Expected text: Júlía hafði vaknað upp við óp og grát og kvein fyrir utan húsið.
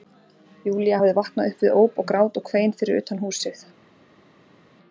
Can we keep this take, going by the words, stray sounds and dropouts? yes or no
yes